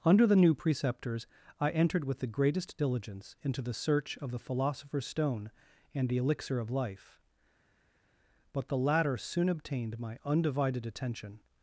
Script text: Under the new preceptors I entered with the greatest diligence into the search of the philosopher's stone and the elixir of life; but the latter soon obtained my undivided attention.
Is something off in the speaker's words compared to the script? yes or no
no